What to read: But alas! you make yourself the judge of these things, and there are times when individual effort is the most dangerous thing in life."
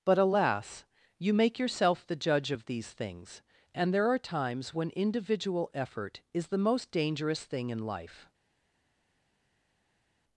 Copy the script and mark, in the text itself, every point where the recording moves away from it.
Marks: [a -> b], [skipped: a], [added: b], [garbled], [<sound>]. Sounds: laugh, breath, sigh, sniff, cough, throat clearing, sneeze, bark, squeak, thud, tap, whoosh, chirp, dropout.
But alas! you make yourself the judge of these things, and there are times when individual effort is the most dangerous thing in life."